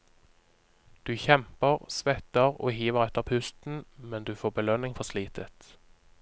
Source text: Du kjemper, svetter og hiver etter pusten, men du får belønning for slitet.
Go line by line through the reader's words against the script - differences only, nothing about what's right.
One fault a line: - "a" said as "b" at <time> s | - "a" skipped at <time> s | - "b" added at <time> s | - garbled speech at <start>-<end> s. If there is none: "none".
none